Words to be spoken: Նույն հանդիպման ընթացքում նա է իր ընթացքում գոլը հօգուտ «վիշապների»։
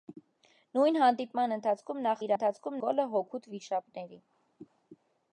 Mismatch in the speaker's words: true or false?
false